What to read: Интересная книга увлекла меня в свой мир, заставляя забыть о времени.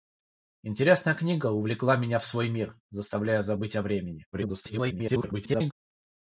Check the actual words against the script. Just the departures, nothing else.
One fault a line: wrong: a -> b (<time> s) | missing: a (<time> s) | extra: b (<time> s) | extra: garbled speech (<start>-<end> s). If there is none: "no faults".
extra: garbled speech (4.3-5.7 s)